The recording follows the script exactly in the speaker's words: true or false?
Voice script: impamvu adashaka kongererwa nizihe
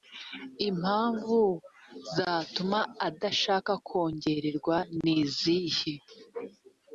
false